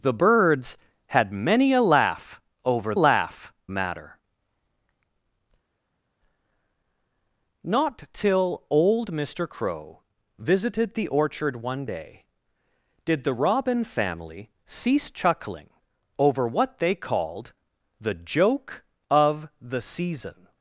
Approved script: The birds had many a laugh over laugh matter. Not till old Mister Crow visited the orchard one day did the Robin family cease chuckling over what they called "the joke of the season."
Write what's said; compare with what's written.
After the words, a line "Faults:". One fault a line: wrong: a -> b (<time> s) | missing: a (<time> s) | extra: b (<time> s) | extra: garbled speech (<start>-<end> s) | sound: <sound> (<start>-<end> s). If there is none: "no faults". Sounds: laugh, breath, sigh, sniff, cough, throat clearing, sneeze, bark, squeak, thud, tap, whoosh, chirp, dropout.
The birds had many a laugh over laugh matter. Not till old Mister Crow visited the orchard one day did the Robin family cease chuckling over what they called "the joke of the season."
Faults:
no faults